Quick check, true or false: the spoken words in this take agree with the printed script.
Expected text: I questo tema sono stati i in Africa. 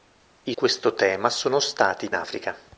true